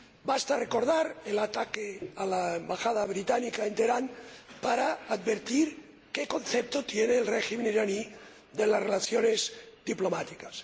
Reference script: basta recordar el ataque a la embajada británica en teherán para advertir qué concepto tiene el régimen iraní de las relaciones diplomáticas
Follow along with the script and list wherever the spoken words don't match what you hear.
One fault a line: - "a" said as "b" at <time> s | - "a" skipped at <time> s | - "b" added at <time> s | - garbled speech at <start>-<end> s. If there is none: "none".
none